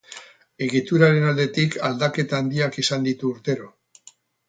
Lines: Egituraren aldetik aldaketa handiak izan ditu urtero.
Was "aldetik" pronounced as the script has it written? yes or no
yes